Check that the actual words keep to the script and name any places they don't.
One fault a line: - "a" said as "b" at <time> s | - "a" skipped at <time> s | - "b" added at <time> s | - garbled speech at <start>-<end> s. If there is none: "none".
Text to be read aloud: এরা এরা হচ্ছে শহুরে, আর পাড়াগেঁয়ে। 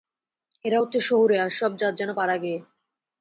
- "এরা" skipped at 0.8 s
- "সব জাত যেন" added at 1.5 s